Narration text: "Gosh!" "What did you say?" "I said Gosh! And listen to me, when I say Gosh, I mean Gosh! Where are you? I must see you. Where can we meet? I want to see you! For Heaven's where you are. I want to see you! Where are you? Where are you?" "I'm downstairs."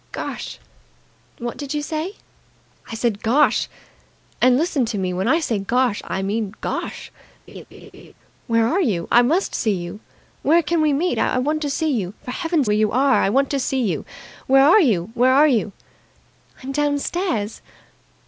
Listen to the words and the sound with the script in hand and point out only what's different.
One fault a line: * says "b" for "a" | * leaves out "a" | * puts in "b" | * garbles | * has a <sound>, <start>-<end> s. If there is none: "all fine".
* has a laugh, 7.5-8.1 s